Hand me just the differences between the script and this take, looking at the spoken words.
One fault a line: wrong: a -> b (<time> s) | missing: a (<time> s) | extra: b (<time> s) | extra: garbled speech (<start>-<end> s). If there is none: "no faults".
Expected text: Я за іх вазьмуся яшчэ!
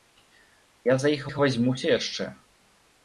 extra: іх (1.3 s)